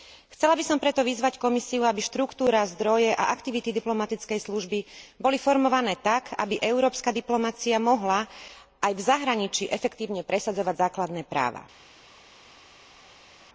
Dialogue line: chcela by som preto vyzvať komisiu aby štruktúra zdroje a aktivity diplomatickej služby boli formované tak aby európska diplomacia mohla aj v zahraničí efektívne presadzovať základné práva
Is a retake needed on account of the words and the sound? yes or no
no